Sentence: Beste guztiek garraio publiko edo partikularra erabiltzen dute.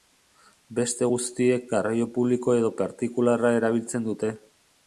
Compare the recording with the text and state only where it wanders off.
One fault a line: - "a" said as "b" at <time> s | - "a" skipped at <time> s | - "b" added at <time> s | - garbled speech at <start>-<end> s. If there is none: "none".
none